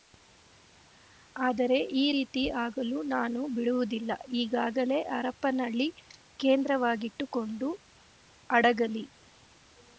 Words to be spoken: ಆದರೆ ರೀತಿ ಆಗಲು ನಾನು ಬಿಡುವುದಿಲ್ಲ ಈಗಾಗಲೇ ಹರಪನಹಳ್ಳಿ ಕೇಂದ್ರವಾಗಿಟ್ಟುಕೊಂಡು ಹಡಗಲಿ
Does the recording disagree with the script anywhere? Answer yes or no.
yes